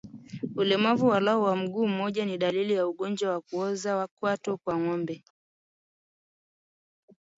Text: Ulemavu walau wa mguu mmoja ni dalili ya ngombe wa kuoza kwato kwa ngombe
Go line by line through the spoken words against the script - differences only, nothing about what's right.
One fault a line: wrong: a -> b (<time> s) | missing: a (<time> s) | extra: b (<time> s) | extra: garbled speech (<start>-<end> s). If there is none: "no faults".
wrong: ngombe -> ugonjwa (2.9 s)